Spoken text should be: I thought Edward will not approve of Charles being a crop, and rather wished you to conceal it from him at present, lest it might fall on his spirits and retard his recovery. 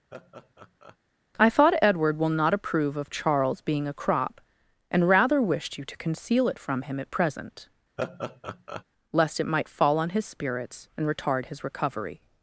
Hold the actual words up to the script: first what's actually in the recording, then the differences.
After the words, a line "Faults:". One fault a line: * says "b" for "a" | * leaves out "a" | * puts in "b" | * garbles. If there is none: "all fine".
I thought Edward will not approve of Charles being a crop, and rather wished you to conceal it from him at present, lest it might fall on his spirits and retard his recovery.
Faults:
all fine